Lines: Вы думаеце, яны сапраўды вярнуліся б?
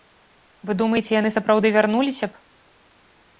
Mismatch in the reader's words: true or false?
false